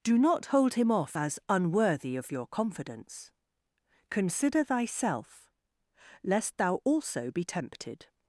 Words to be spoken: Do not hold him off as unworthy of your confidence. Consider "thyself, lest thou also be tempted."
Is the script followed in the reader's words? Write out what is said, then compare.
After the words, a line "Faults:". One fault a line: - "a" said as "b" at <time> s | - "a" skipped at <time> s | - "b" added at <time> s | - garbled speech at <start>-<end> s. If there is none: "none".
Do not hold him off as unworthy of your confidence. Consider "thyself, lest thou also be tempted."
Faults:
none